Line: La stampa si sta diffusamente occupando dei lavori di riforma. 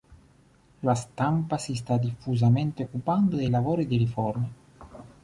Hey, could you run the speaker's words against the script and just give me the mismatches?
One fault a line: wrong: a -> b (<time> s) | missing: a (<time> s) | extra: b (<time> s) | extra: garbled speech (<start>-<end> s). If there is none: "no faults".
no faults